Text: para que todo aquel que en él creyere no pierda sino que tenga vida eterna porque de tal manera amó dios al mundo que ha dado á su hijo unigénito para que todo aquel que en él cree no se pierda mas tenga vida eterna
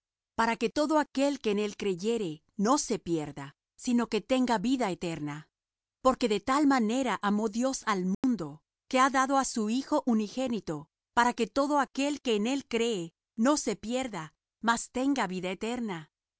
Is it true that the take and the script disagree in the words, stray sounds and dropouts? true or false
true